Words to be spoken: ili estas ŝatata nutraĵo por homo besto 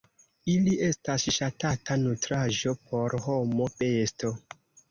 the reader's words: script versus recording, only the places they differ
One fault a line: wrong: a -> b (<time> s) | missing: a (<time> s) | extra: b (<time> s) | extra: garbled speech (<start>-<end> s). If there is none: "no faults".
no faults